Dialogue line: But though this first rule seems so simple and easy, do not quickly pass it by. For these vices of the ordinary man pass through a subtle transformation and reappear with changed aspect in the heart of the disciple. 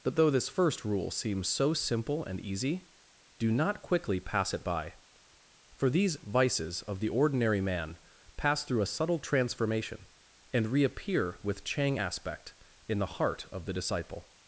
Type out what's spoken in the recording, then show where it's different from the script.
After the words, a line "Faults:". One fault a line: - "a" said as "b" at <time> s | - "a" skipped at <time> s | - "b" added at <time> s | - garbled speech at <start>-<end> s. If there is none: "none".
But though this first rule seems so simple and easy, do not quickly pass it by. For these vices of the ordinary man pass through a subtle transformation and reappear with chang aspect in the heart of the disciple.
Faults:
- "changed" said as "chang" at 11.6 s